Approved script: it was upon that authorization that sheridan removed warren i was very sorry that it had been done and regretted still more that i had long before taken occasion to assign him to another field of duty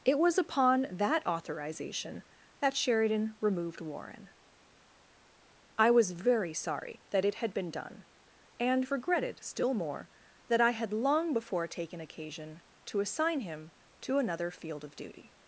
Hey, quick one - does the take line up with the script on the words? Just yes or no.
yes